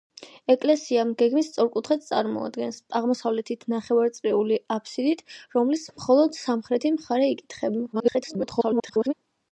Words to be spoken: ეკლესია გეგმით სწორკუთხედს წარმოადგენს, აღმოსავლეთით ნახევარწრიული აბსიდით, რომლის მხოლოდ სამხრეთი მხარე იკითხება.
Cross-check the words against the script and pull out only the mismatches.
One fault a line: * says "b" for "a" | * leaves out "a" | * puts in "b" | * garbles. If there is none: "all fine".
* garbles